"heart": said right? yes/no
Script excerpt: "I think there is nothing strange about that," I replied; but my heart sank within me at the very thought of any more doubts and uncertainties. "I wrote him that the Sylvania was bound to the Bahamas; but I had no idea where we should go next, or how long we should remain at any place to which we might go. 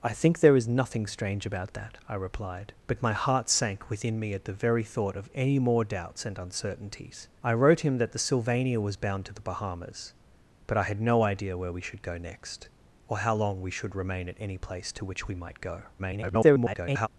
yes